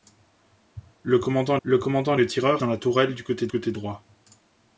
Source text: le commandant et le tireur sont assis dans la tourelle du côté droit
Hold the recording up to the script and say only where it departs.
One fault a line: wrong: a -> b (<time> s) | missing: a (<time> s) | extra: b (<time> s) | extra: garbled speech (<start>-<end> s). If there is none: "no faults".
extra: le commandant (1.6 s)
missing: sont assis (2.6 s)
extra: côté (3.5 s)